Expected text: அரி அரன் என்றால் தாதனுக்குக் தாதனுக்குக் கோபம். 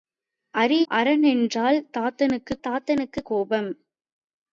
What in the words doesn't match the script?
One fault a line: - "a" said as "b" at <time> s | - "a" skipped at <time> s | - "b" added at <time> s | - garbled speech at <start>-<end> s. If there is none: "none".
none